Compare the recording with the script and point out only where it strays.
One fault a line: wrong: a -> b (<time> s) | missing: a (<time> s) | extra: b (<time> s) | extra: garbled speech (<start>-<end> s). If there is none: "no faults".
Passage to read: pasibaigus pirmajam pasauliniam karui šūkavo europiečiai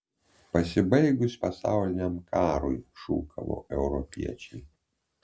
missing: pirmajam (1.4 s)